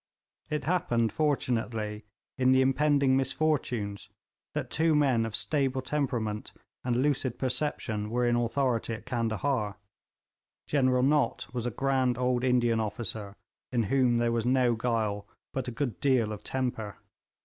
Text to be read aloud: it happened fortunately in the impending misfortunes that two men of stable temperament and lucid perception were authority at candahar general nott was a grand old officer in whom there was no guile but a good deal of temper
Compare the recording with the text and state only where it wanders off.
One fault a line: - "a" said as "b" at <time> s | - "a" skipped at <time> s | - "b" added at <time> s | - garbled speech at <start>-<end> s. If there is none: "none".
- "in" added at 8.2 s
- "indian" added at 12.4 s